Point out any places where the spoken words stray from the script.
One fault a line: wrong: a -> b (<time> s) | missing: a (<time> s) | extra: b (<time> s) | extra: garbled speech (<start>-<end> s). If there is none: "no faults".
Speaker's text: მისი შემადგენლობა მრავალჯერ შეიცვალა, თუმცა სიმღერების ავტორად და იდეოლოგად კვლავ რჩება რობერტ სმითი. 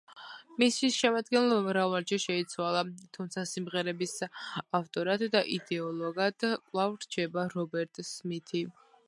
no faults